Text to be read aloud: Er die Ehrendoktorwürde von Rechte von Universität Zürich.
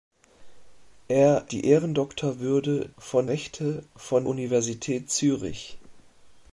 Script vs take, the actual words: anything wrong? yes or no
no